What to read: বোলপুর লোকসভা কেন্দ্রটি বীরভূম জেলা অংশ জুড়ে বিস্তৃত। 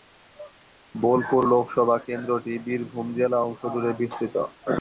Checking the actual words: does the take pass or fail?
pass